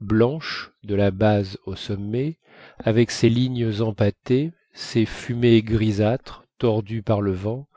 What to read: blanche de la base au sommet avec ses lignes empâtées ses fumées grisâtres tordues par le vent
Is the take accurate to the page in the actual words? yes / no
yes